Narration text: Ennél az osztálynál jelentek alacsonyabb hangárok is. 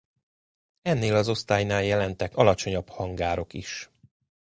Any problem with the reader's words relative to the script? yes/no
no